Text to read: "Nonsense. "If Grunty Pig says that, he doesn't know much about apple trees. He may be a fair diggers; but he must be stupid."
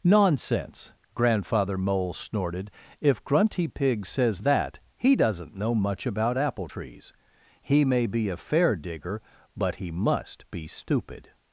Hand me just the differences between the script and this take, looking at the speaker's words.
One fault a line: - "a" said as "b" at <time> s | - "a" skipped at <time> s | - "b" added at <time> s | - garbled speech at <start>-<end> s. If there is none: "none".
- "Grandfather Mole snorted" added at 1.1 s
- "diggers" said as "digger" at 8.8 s